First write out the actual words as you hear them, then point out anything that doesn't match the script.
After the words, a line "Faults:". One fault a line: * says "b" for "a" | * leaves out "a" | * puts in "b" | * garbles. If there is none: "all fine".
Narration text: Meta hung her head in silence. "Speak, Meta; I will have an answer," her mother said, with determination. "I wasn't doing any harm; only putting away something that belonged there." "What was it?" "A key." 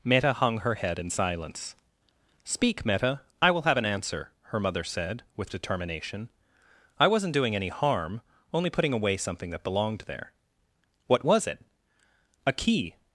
Meta hung her head in silence. "Speak, Meta; I will have an answer," her mother said, with determination. "I wasn't doing any harm; only putting away something that belonged there." "What was it?" "A key."
Faults:
all fine